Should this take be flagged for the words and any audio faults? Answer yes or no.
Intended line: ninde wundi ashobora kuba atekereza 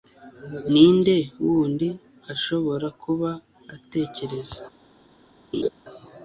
yes